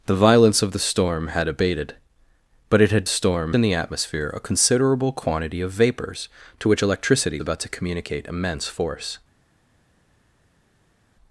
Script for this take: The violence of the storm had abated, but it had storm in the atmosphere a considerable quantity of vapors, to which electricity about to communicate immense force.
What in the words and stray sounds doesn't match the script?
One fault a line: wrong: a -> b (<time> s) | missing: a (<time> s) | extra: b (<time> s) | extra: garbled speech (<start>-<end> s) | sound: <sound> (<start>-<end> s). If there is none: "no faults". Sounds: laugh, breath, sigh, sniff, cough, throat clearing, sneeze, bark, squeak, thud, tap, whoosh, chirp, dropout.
no faults